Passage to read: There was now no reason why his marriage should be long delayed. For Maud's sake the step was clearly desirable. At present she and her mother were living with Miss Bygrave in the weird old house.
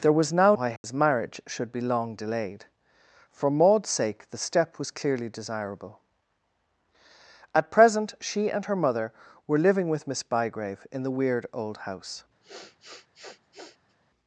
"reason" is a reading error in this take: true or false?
true